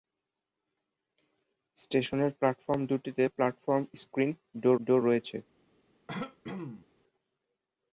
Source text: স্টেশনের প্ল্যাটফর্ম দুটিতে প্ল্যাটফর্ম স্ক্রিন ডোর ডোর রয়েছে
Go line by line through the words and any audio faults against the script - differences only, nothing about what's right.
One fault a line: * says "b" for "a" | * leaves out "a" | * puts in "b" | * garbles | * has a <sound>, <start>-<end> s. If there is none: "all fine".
* has a throat clearing, 6.1-6.9 s